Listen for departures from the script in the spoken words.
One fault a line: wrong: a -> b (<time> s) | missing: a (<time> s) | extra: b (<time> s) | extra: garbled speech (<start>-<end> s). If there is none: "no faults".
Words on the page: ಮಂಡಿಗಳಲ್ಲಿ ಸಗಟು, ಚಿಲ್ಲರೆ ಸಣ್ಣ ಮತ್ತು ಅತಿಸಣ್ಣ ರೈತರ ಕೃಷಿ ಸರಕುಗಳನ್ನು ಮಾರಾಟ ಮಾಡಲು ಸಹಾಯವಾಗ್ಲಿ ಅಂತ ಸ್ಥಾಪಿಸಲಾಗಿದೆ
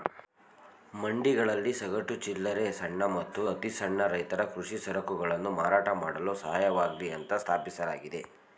no faults